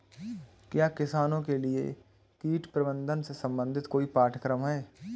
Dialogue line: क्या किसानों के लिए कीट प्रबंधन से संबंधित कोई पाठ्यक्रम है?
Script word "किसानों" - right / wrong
right